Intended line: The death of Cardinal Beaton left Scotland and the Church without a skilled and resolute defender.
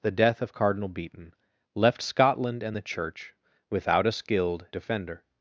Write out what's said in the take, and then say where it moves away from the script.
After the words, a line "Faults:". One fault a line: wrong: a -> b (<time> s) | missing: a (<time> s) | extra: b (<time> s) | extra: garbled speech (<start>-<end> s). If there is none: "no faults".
The death of Cardinal Beaton left Scotland and the Church without a skilled defender.
Faults:
missing: and resolute (4.7 s)